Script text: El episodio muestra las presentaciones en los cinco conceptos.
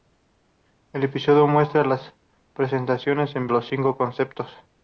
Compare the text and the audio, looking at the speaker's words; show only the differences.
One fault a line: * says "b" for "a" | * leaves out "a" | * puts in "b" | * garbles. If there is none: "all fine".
all fine